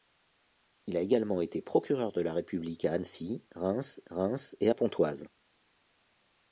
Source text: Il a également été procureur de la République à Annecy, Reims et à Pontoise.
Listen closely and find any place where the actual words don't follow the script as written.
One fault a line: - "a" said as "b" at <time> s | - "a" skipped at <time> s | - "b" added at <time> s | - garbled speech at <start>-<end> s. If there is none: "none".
- "Reims" added at 4.1 s